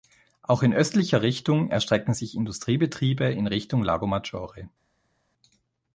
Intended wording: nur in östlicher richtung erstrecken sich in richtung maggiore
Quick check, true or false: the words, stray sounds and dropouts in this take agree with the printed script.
false